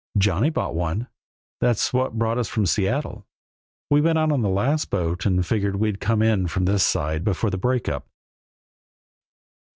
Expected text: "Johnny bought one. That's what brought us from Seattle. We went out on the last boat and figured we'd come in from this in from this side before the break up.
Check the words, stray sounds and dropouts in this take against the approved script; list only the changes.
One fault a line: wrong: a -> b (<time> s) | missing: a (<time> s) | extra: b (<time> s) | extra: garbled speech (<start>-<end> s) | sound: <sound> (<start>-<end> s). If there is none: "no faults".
missing: in from this (6.8 s)